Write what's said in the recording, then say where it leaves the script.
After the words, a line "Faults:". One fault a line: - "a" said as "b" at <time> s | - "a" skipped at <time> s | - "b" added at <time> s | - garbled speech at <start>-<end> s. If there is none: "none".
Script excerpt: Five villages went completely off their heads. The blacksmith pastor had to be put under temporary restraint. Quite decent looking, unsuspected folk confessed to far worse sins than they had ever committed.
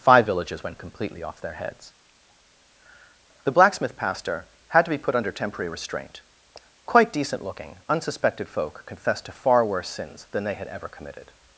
Five villages went completely off their heads. The blacksmith pastor had to be put under temporary restraint. Quite decent looking, unsuspected folk confessed to far worse sins than they had ever committed.
Faults:
none